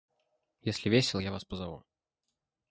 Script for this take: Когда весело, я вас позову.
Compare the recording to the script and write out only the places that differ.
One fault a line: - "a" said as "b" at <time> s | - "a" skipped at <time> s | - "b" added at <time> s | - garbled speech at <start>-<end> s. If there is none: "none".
- "Когда" said as "Если" at 0.6 s